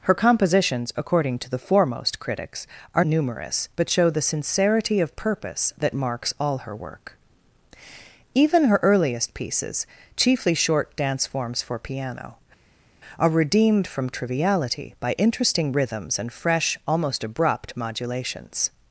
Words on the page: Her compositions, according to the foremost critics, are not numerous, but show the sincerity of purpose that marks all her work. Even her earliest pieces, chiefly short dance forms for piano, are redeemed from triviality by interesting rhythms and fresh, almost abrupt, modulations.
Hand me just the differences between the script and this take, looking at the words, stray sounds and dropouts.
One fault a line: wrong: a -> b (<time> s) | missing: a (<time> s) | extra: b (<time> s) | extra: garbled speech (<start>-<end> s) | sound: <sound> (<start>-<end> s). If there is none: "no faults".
missing: not (3.0 s)